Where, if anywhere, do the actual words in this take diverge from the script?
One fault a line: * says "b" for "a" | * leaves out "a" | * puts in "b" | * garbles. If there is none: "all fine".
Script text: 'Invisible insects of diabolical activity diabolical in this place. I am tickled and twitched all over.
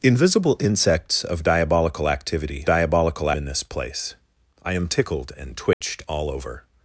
all fine